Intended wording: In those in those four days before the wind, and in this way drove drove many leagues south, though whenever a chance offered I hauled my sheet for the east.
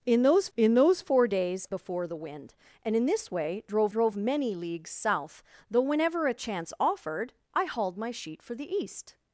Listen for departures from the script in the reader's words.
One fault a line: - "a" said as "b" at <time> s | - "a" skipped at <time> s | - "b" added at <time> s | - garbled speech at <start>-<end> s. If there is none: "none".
none